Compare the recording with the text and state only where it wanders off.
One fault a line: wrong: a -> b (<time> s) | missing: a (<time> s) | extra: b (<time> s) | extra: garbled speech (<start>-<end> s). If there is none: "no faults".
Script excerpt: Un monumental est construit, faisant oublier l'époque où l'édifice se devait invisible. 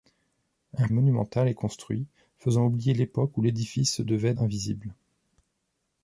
no faults